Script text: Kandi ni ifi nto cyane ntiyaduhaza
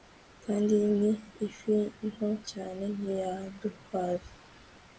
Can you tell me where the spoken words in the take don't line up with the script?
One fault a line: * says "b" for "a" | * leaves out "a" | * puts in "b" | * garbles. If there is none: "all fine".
all fine